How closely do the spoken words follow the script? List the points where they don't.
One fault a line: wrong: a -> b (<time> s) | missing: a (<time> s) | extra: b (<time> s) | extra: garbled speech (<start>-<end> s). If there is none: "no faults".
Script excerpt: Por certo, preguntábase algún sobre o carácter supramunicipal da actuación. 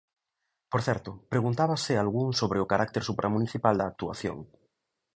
no faults